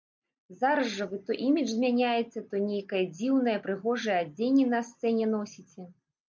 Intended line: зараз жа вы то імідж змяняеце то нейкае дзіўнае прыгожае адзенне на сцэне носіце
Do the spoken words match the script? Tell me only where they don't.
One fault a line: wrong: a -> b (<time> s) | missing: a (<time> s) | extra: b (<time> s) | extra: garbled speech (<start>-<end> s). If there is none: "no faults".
no faults